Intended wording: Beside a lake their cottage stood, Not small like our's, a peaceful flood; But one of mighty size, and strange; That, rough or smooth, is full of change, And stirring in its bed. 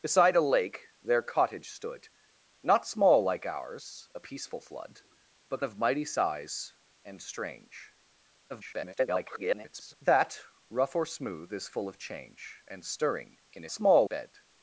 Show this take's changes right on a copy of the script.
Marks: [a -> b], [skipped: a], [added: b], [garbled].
Beside a lake their cottage stood, Not small like our's, a peaceful flood; But [skipped: one] of mighty size, and strange; [garbled] That, rough or smooth, is full of change, And stirring in [its -> small] bed.